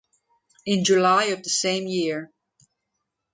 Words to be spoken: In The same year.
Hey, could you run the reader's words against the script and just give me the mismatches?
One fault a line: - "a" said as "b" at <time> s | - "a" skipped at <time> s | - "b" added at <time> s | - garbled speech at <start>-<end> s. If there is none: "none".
- "July of" added at 0.8 s